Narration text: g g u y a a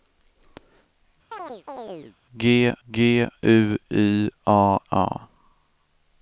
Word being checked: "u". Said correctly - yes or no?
yes